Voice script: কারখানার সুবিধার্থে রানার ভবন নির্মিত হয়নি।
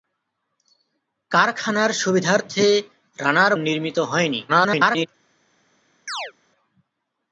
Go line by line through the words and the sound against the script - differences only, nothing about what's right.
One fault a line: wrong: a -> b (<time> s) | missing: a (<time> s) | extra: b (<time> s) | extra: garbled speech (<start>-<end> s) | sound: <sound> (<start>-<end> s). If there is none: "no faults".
missing: ভবন (3.5 s)
extra: garbled speech (4.5-5.1 s)
sound: chirp (6.1-6.3 s)